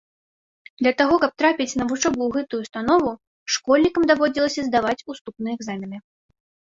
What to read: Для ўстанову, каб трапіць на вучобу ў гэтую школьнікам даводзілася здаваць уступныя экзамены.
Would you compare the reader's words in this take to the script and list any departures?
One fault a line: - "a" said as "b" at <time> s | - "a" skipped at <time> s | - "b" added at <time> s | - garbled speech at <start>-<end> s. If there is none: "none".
- "ўстанову" said as "таго" at 1.0 s
- "ўстанову" added at 2.6 s